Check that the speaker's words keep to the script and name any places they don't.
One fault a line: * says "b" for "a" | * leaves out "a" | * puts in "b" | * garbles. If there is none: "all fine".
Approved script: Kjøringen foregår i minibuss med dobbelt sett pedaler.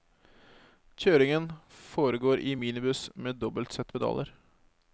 all fine